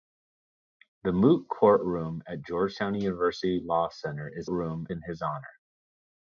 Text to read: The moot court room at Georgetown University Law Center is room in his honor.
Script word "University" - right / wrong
right